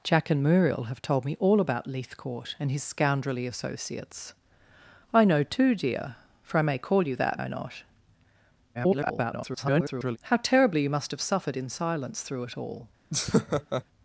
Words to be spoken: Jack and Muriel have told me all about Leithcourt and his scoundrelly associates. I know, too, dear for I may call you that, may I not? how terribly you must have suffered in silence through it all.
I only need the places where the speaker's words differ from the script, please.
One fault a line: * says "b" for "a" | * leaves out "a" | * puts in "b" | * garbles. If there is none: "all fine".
* leaves out "may"
* garbles